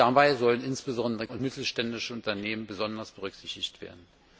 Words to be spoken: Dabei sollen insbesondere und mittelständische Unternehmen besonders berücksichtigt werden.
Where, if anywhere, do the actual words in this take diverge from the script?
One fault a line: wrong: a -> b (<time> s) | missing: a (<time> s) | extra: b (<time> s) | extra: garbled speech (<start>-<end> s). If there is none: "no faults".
no faults